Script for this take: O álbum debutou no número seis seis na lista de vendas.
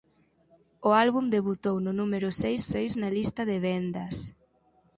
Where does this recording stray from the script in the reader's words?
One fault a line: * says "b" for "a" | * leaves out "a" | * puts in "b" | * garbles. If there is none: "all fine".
all fine